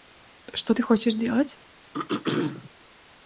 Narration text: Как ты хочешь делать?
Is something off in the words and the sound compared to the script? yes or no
yes